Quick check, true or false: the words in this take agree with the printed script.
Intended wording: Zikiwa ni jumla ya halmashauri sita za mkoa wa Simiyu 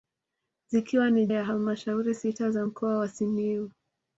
false